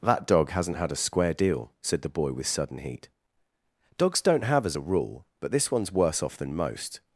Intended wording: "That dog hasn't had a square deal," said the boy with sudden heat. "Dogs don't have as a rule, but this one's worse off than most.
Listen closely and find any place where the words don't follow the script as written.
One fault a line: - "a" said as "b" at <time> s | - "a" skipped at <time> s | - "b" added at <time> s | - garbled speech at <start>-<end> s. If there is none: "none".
none